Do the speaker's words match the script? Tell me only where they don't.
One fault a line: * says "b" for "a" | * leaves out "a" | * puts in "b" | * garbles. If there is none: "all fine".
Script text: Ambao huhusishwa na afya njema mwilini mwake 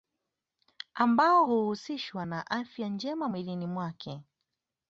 all fine